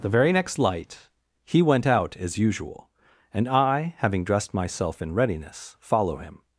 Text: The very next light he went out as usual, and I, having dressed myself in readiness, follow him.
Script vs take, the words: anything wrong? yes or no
no